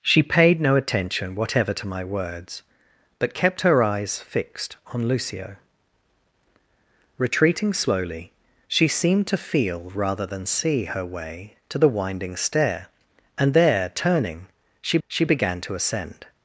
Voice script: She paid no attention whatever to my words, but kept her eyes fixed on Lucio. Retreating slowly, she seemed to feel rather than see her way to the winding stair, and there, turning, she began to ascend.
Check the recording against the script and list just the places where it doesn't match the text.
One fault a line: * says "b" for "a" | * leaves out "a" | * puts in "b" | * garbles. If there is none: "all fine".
* puts in "she"